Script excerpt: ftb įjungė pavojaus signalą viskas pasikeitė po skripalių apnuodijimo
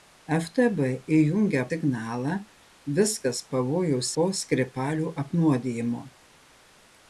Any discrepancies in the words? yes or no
yes